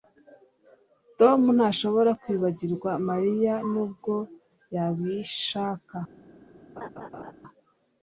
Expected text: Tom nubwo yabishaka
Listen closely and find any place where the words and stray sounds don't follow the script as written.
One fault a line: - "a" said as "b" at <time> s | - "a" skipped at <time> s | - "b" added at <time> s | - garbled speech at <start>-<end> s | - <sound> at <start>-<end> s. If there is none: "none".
- "ntashobora kwibagirwa Mariya" added at 1.6 s
- laugh at 6.8-7.3 s